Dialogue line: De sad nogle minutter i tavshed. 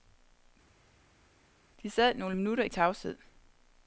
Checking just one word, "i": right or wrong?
right